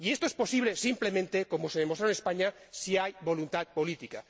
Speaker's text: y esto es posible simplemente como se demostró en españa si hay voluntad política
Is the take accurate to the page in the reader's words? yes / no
yes